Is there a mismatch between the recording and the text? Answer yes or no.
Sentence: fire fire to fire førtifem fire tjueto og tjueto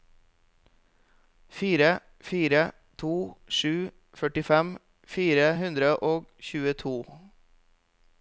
yes